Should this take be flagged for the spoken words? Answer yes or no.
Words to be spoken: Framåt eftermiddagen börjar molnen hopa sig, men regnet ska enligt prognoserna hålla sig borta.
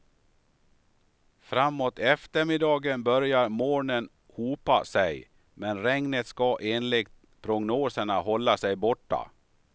no